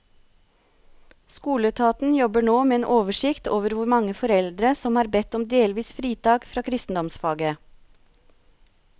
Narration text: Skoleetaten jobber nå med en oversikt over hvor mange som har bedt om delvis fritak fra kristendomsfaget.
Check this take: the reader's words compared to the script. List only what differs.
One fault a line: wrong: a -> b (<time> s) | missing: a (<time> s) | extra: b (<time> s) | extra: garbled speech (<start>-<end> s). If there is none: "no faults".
extra: foreldre (4.2 s)